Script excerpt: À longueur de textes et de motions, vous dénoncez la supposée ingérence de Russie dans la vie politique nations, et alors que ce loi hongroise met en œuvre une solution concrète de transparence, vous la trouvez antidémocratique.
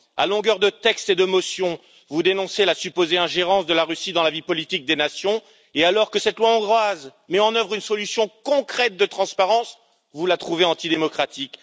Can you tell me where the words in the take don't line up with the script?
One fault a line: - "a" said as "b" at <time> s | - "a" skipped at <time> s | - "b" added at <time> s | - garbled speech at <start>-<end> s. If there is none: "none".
- "la" added at 3.7 s
- "des" added at 4.8 s
- "ce" said as "cette" at 6.2 s